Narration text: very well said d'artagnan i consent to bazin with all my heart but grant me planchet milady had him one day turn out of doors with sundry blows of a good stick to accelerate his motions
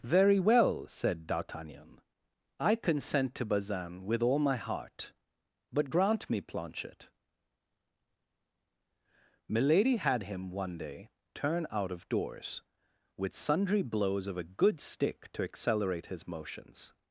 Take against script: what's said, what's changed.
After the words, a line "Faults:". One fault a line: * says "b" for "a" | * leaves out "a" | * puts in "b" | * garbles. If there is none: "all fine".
very well said d'artagnan i consent to bazin with all my heart but grant me planchet milady had him one day turn out of doors with sundry blows of a good stick to accelerate his motions
Faults:
all fine